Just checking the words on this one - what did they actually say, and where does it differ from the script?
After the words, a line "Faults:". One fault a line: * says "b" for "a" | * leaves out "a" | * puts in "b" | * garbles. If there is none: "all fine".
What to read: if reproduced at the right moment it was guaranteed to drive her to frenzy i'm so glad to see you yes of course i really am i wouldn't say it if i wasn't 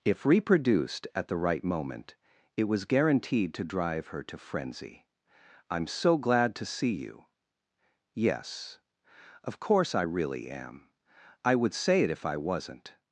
if reproduced at the right moment it was guaranteed to drive her to frenzy i'm so glad to see you yes of course i really am i would say it if i wasn't
Faults:
* says "would" for "wouldn't"